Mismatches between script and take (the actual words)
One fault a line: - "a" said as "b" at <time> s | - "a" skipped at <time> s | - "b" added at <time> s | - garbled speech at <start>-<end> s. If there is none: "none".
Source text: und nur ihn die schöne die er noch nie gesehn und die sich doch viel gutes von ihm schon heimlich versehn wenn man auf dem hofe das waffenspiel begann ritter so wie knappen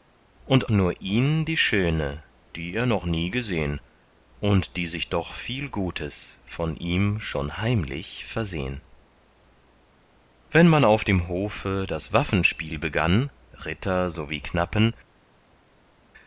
none